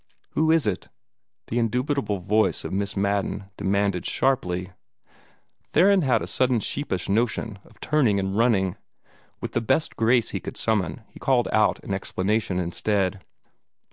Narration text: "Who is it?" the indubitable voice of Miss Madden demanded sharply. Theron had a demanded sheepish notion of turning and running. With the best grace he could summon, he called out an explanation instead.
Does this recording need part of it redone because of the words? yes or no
yes